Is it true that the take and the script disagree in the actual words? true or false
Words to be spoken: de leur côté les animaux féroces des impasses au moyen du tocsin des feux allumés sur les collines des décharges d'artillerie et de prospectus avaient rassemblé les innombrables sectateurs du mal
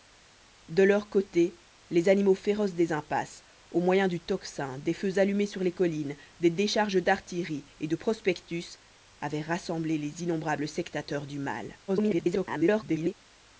true